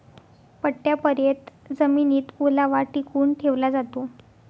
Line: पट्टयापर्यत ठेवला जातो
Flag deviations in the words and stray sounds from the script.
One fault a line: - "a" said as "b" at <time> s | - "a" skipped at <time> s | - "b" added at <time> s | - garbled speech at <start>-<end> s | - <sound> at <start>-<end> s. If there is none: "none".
- "जमिनीत ओलावा टिकवून" added at 1.7 s